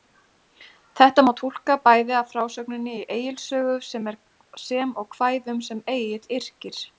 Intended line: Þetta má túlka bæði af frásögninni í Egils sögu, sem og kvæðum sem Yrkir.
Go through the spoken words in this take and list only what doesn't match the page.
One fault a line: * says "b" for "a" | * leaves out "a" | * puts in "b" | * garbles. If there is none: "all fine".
* puts in "Egill"